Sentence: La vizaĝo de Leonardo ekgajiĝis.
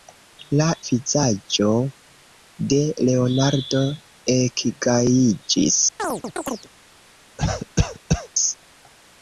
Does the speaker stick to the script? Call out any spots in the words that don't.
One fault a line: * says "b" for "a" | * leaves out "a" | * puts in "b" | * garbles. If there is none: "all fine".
all fine